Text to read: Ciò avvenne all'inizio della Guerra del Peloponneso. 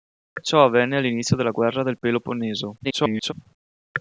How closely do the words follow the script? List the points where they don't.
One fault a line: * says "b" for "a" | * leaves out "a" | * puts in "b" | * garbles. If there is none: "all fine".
* garbles